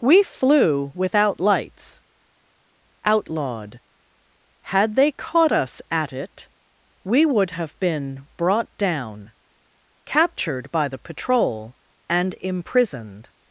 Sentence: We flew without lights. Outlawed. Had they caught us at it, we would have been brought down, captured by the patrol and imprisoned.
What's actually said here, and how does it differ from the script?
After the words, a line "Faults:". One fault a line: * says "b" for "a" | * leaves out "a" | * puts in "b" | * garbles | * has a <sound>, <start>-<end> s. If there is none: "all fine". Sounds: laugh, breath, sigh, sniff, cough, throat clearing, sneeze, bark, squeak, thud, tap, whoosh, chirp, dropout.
We flew without lights. Outlawed. Had they caught us at it, we would have been brought down, captured by the patrol and imprisoned.
Faults:
all fine